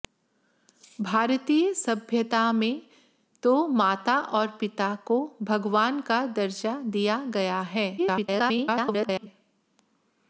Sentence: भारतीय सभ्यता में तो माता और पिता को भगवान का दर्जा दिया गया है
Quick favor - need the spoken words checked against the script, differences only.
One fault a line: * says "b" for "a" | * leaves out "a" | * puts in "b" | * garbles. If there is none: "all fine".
* garbles